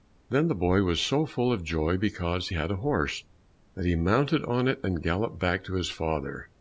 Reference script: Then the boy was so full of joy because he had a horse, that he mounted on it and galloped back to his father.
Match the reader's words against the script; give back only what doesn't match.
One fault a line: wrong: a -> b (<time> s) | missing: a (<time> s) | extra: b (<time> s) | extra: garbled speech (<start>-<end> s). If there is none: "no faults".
missing: he (2.5 s)